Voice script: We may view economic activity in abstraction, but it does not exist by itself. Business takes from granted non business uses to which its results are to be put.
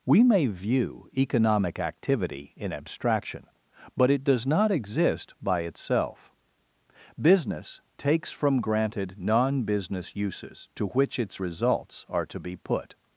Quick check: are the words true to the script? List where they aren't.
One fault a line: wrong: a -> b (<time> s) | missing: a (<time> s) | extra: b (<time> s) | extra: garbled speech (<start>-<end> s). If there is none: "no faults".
no faults